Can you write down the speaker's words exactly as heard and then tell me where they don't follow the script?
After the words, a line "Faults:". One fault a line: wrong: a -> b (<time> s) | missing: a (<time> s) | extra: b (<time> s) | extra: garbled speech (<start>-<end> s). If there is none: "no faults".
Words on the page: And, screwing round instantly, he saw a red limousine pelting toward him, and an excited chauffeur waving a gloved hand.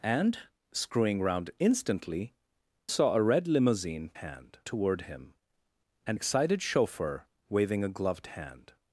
And, screwing round instantly, saw a red limousine hand toward him, and excited chauffeur waving a gloved hand.
Faults:
missing: he (2.3 s)
wrong: pelting -> hand (4.1 s)
missing: an (6.2 s)